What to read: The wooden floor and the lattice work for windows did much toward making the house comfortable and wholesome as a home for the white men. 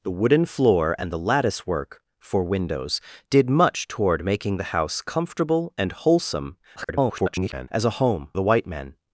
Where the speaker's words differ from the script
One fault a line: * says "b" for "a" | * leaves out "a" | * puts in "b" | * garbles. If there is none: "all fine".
* garbles
* leaves out "for"